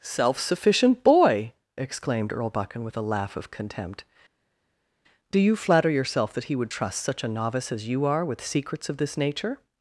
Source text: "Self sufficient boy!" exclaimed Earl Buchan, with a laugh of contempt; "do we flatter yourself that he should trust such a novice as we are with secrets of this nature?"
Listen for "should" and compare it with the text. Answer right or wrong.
wrong